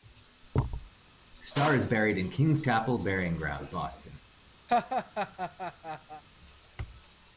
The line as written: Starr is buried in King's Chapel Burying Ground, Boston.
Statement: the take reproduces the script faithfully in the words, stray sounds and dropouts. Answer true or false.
false